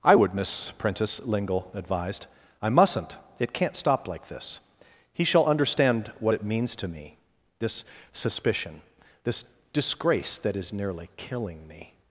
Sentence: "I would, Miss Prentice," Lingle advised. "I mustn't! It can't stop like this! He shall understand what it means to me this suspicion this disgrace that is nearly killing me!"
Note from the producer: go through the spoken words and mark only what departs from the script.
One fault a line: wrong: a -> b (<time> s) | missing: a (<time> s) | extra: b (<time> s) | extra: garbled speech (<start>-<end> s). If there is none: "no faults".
no faults